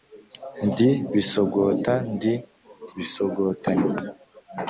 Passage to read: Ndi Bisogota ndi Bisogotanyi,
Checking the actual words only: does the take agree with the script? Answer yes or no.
yes